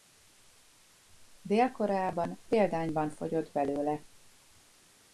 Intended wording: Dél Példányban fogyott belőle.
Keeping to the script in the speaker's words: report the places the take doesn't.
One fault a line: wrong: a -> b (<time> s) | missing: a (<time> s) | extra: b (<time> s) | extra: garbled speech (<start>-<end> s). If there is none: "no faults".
extra: Koreában (1.7 s)